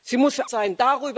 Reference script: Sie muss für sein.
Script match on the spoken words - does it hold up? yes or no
yes